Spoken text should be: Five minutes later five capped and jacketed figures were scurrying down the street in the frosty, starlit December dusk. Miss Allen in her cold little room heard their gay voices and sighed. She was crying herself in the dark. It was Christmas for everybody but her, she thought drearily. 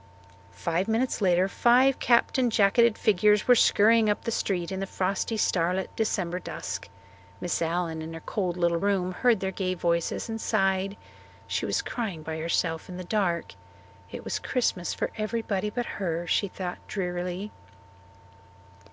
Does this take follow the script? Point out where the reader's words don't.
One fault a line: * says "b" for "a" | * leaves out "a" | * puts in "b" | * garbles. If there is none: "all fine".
* says "up" for "down"
* puts in "by"